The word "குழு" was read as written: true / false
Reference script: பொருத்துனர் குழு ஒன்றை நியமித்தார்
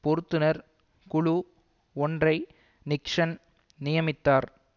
true